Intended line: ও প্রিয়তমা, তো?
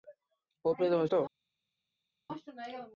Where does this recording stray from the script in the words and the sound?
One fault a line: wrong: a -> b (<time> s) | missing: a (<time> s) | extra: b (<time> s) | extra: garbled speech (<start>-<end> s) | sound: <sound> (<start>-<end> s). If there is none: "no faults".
no faults